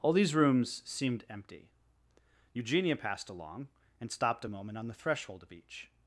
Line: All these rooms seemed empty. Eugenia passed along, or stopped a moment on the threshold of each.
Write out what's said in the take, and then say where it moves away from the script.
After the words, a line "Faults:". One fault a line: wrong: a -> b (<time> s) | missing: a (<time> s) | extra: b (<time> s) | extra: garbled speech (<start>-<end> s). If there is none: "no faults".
All these rooms seemed empty. Eugenia passed along, and stopped a moment on the threshold of each.
Faults:
wrong: or -> and (4.0 s)